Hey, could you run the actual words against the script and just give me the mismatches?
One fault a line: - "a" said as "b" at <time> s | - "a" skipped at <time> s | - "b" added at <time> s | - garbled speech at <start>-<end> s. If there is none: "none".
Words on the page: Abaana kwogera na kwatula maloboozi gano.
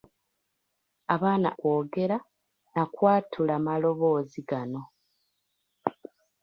none